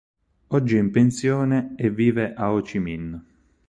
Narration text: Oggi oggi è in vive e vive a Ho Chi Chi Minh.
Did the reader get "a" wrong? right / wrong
right